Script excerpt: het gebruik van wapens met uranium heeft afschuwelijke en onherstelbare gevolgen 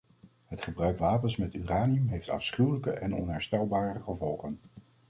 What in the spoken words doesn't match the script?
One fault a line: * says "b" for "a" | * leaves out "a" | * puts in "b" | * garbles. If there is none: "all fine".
* leaves out "van"